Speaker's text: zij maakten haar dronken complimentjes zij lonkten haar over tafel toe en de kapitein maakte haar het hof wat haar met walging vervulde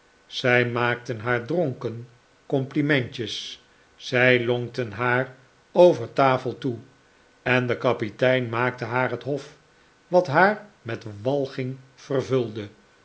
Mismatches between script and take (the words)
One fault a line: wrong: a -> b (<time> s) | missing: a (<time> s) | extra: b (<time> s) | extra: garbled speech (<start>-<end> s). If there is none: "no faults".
no faults